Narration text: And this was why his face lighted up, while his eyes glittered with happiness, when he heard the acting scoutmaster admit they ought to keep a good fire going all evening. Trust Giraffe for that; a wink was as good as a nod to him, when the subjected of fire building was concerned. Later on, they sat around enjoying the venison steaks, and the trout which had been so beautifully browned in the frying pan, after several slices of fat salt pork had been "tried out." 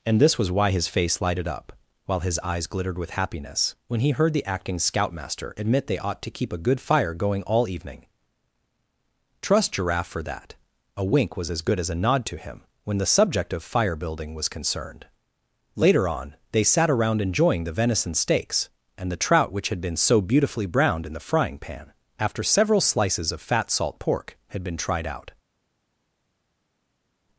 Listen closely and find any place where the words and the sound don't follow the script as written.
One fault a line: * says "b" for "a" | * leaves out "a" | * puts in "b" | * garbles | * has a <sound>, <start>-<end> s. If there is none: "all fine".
* says "subject" for "subjected"